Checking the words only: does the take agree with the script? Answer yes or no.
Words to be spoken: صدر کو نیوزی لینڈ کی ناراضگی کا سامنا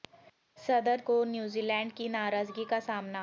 yes